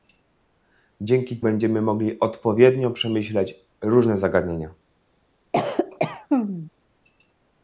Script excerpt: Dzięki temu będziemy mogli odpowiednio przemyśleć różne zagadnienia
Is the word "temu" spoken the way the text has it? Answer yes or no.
no